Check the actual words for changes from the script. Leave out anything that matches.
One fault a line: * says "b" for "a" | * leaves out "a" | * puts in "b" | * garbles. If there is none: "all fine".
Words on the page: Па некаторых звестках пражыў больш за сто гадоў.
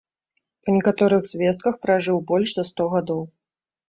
all fine